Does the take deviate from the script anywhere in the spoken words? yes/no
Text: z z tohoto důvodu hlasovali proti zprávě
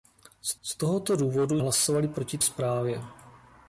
no